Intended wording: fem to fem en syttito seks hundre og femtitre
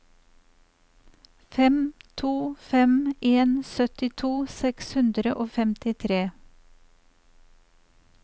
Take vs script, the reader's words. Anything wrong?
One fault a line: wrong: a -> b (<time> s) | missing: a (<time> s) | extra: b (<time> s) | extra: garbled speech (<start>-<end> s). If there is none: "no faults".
no faults